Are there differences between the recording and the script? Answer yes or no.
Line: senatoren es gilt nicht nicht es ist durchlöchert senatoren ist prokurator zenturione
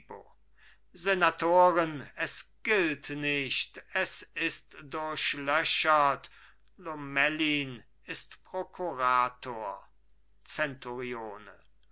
yes